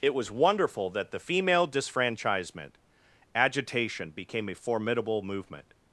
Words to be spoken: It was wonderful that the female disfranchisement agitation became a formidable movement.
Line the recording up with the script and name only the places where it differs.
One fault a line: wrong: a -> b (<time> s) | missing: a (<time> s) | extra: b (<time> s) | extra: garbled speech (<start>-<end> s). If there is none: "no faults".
no faults